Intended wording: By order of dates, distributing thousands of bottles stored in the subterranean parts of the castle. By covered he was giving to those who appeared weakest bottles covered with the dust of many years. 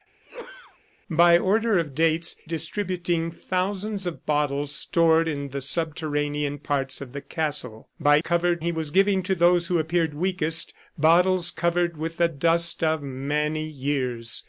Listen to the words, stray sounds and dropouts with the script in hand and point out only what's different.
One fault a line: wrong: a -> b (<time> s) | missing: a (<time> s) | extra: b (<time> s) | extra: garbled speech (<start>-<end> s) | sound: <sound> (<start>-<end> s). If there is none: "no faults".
sound: sneeze (0.2-0.8 s)